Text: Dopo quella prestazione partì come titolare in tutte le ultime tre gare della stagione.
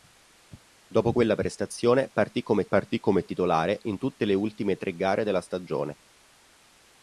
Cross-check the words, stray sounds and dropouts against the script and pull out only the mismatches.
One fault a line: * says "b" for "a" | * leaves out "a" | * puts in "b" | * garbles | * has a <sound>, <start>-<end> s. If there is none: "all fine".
* puts in "partì come"